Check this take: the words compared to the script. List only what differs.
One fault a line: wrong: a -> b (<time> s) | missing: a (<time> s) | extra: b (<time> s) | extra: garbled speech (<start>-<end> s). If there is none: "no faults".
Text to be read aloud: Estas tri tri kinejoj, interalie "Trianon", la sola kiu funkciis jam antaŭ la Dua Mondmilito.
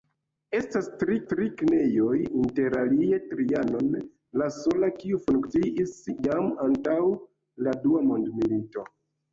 no faults